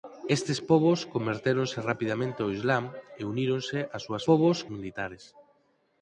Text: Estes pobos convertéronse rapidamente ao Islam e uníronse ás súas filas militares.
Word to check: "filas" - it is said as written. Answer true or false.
false